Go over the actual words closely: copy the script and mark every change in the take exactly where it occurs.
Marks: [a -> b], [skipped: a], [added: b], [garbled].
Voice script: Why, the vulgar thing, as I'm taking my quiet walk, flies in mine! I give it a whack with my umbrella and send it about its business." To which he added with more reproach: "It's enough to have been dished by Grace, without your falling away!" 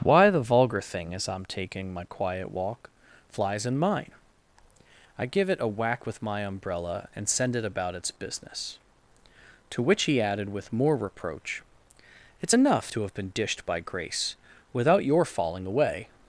Why, the vulgar thing, as I'm taking my quiet walk, flies in mine! I give it a whack with my umbrella and send it about its business." To which he added with more reproach: "It's enough to have been dished by Grace, without your falling away!"